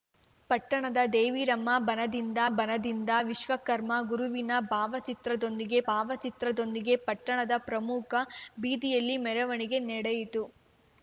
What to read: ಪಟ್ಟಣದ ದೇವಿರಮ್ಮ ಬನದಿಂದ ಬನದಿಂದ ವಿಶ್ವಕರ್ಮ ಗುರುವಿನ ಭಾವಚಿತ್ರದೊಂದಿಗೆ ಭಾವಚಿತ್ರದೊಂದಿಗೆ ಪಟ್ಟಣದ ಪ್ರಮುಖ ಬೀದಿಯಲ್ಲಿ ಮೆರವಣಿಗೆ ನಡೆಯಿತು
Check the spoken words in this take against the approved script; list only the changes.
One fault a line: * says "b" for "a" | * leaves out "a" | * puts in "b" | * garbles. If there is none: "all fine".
all fine